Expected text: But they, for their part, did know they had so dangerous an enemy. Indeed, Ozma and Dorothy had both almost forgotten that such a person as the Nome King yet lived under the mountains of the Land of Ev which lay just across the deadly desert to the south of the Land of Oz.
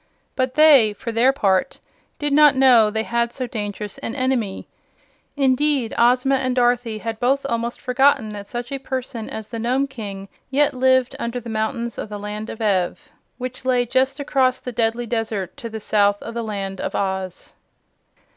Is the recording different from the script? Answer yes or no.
yes